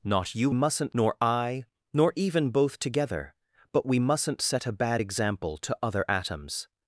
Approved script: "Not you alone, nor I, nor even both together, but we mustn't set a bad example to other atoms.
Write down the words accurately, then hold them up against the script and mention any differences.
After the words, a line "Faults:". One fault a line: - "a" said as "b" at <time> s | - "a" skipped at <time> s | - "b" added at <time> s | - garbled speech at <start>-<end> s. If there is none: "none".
"Not you mustn't, nor I, nor even both together, but we mustn't set a bad example to other atoms.
Faults:
- "alone" said as "mustn't" at 0.5 s